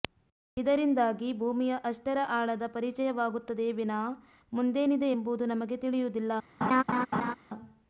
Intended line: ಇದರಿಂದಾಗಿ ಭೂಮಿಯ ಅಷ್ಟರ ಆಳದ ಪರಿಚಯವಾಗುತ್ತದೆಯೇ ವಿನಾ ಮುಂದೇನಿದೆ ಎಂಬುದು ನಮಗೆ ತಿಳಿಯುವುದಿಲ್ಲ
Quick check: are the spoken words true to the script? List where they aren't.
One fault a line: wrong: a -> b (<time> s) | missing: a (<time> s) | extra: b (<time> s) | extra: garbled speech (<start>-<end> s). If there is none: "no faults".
no faults